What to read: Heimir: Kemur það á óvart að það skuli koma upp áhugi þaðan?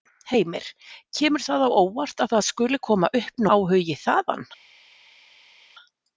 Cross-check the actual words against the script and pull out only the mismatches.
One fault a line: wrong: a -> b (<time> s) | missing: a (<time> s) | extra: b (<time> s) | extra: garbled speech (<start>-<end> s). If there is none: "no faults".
no faults